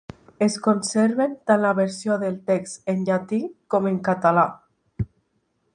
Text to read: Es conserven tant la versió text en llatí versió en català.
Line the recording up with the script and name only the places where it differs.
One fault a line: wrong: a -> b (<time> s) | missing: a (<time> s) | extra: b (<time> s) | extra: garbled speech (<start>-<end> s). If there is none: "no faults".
extra: del (2.2 s)
wrong: versió -> com (3.8 s)